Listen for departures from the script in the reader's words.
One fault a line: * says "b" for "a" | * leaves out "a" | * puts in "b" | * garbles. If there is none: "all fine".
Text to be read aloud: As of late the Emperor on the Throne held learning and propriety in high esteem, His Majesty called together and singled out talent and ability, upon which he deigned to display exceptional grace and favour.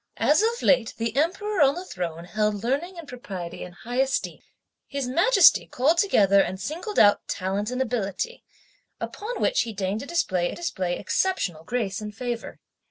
* puts in "display"